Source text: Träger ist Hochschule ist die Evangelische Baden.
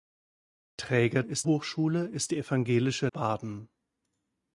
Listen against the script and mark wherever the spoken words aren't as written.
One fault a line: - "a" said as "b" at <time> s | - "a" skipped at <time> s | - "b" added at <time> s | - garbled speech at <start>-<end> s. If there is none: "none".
none